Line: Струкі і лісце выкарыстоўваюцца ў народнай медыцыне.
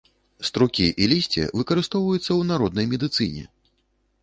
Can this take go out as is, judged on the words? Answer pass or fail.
pass